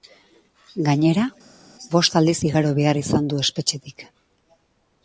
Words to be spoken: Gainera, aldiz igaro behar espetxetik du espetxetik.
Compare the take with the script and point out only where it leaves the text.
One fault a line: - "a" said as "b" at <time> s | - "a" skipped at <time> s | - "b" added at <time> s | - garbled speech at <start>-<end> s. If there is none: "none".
- "bost" added at 1.9 s
- "espetxetik" said as "izan" at 3.0 s